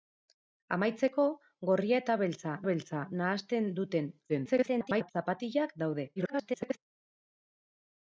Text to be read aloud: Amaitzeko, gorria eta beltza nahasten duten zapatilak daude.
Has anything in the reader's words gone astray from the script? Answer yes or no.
yes